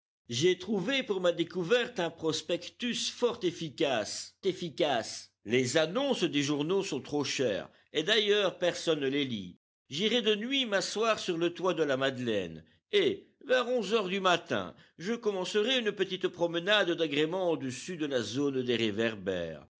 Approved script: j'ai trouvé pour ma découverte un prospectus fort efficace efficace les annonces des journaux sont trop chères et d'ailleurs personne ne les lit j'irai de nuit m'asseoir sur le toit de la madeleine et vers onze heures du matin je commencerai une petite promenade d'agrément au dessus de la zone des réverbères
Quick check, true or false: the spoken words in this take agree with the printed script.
true